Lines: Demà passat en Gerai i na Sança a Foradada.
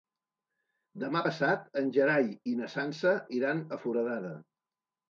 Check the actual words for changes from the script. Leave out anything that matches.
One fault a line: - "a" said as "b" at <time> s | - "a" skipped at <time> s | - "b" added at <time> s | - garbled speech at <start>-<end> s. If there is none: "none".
- "iran" added at 3.4 s